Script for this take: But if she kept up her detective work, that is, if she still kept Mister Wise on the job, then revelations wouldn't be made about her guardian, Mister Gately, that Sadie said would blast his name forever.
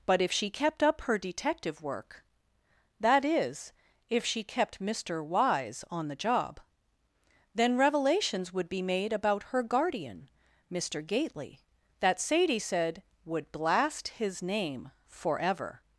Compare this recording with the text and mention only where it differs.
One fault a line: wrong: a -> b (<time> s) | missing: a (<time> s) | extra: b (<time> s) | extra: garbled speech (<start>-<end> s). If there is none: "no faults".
missing: still (4.4 s)
wrong: wouldn't -> would (8.5 s)